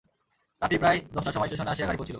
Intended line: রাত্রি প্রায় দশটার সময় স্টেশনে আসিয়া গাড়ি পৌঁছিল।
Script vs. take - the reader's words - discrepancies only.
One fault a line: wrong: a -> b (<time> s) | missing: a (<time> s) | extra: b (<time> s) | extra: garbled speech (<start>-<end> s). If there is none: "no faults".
no faults